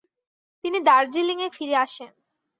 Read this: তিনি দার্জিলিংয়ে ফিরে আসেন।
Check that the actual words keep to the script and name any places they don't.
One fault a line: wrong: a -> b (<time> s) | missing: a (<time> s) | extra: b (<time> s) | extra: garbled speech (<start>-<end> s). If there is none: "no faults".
no faults